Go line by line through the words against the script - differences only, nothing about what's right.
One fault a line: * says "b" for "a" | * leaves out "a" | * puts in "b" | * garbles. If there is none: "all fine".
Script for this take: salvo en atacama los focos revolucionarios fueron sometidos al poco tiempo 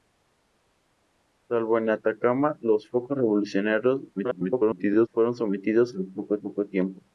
* garbles
* puts in "poco"